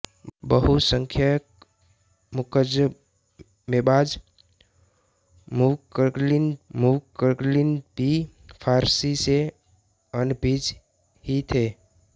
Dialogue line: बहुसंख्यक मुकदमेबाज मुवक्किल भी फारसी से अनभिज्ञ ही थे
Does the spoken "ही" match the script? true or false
true